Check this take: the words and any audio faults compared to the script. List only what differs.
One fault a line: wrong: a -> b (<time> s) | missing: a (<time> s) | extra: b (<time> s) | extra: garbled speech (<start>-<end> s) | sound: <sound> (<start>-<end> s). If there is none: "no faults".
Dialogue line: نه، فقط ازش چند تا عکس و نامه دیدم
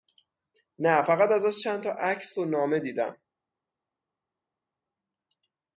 no faults